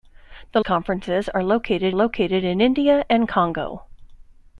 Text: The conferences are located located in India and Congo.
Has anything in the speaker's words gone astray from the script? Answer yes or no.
no